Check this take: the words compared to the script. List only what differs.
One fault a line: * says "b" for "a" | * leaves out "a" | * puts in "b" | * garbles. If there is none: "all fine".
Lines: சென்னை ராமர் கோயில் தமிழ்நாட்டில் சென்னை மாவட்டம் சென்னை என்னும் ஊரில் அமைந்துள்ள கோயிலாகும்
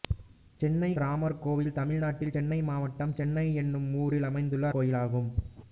all fine